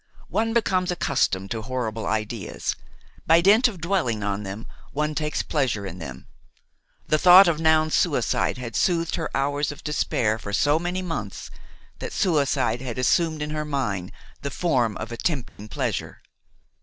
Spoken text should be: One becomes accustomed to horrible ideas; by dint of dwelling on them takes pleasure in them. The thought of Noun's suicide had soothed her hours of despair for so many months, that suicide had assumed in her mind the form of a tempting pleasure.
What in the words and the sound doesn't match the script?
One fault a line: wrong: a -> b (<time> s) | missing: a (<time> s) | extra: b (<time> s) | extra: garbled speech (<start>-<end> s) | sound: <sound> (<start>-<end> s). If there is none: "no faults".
extra: one (4.9 s)
sound: dropout (15.5-15.6 s)